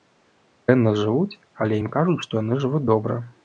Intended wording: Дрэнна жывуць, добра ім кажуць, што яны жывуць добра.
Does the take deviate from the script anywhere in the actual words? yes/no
yes